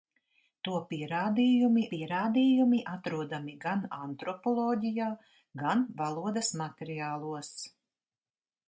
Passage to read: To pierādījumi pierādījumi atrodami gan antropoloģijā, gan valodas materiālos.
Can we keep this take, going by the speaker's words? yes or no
yes